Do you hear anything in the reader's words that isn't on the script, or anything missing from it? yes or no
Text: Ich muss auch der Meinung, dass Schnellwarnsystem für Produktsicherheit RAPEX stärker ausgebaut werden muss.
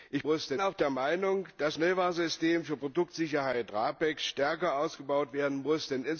no